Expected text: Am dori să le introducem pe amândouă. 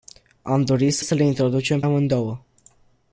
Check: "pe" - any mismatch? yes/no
yes